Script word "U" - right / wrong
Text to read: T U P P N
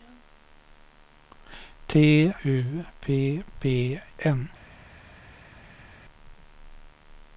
right